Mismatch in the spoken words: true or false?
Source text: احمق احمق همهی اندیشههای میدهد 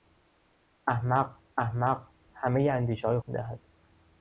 false